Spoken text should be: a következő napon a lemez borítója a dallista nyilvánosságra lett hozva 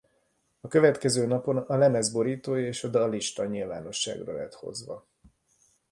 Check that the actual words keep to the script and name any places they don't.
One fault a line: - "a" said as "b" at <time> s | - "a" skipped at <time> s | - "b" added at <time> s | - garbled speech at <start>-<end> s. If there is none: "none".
- "és" added at 2.7 s